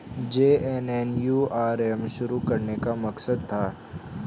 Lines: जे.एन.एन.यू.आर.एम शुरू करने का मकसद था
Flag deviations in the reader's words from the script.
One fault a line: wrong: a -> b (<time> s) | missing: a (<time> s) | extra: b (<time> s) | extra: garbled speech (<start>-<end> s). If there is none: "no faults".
no faults